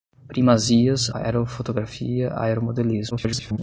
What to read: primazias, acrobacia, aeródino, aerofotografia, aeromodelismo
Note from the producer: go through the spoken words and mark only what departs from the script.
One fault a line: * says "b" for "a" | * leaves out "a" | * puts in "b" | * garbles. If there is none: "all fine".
* leaves out "acrobacia aeródino"
* garbles